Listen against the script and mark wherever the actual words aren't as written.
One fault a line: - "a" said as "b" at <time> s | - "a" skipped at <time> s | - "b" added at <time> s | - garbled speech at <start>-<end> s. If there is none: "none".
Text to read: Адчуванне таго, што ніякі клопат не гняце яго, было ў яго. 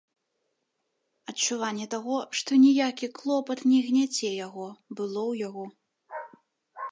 none